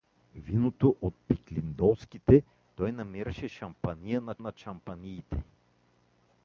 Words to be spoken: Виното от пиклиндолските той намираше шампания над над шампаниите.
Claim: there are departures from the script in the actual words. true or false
false